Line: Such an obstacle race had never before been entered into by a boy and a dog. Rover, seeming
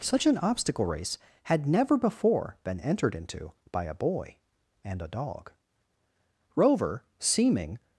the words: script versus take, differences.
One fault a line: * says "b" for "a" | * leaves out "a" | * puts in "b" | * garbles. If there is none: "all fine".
all fine